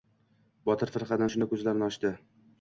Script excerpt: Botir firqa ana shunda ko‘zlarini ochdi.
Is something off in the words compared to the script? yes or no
no